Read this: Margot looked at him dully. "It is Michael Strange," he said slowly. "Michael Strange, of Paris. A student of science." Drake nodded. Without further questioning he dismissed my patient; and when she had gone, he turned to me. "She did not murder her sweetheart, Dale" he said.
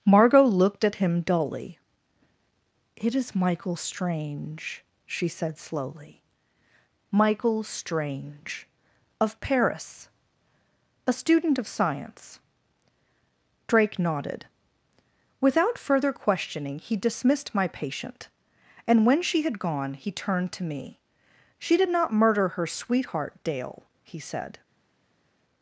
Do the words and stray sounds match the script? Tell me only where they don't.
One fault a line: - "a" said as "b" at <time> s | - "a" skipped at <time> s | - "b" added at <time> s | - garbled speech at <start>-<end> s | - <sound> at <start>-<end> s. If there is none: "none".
- "he" said as "she" at 5.1 s